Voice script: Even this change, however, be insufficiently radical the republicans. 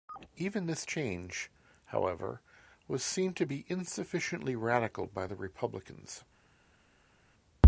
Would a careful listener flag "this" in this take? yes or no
no